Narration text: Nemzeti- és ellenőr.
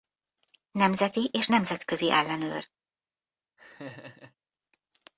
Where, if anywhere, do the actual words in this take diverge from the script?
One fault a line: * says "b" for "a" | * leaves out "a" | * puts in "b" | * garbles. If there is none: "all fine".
* puts in "nemzetközi"